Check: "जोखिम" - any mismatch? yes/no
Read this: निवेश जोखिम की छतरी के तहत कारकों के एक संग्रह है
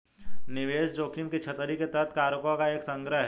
no